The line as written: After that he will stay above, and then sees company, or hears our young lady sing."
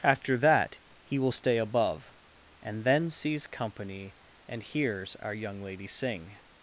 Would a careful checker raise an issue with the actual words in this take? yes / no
yes